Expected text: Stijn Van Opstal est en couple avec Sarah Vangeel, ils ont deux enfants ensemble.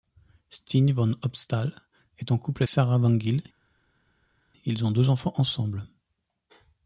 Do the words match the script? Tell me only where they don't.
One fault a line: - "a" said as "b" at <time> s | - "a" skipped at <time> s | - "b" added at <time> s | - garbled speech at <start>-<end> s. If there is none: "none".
- "avec" skipped at 2.6 s